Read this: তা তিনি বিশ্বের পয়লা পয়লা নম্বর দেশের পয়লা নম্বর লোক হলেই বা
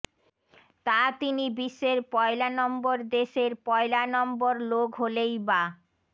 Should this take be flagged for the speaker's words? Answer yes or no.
yes